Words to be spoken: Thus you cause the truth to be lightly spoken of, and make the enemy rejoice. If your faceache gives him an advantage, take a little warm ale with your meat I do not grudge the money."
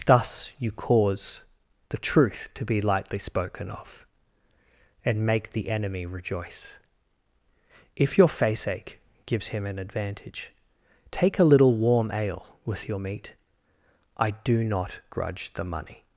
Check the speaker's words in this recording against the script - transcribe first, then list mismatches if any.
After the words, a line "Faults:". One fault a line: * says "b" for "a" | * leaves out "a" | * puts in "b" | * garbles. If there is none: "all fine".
Thus you cause the truth to be lightly spoken of, and make the enemy rejoice. If your faceache gives him an advantage, take a little warm ale with your meat I do not grudge the money."
Faults:
all fine